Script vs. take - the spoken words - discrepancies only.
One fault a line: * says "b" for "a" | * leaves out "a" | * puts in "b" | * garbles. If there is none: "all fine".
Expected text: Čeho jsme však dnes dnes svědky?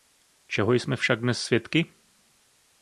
* leaves out "dnes"